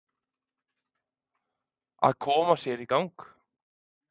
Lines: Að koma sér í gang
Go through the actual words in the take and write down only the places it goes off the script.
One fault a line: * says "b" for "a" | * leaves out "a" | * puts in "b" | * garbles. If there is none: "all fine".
all fine